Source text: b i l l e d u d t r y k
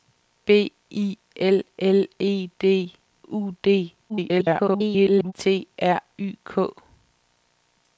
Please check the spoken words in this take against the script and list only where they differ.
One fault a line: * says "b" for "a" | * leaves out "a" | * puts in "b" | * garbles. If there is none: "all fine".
* garbles